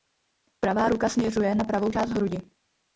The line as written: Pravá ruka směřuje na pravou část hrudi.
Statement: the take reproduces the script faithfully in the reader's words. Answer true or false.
true